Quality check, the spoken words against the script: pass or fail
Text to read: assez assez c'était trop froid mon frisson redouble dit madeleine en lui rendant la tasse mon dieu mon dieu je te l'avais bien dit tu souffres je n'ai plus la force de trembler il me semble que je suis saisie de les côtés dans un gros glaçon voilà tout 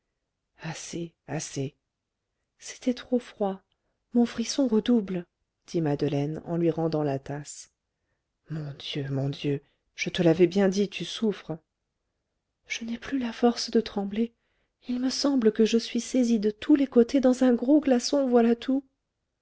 fail